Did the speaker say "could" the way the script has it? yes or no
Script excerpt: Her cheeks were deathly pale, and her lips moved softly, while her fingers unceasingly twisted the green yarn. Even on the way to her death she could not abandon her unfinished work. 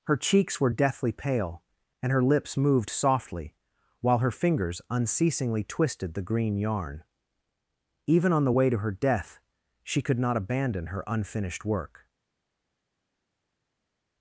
yes